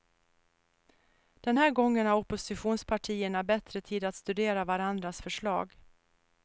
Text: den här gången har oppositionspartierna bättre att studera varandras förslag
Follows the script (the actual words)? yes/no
no